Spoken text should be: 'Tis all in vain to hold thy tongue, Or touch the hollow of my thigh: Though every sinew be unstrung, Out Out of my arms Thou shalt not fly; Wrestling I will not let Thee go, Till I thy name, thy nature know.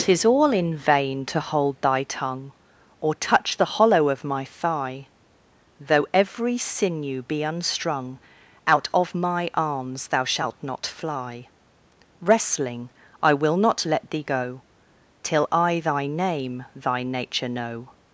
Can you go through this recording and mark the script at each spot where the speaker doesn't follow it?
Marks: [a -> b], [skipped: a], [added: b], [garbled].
'Tis all in vain to hold thy tongue, Or touch the hollow of my thigh: Though every sinew be unstrung, Out [skipped: Out] of my arms Thou shalt not fly; Wrestling I will not let Thee go, Till I thy name, thy nature know.